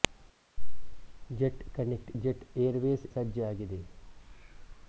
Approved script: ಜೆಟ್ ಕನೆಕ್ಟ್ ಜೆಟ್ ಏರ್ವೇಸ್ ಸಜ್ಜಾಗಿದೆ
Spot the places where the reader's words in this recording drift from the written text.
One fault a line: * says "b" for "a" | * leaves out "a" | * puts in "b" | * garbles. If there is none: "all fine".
all fine